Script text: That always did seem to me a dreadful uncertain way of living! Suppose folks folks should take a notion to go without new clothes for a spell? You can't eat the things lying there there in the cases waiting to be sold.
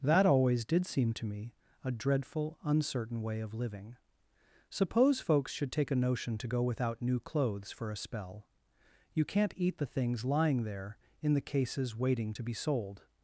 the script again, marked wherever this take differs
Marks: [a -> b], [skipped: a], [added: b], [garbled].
That always did seem to me a dreadful uncertain way of living! Suppose folks [skipped: folks] should take a notion to go without new clothes for a spell? You can't eat the things lying there [skipped: there] in the cases waiting to be sold.